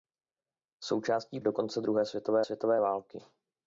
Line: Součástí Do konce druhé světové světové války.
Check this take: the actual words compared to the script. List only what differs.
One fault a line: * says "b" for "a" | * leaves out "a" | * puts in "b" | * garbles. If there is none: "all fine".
all fine